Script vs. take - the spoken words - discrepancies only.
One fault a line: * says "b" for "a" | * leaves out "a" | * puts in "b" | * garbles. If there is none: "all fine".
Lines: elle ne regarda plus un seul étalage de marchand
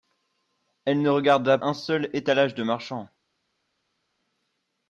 * leaves out "plus"